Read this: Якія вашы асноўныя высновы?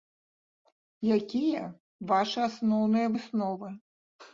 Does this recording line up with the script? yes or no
yes